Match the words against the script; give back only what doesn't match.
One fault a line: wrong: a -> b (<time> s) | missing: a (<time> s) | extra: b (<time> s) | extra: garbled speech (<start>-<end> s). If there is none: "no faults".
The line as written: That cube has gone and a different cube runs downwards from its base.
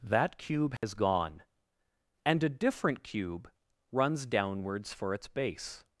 wrong: from -> for (4.9 s)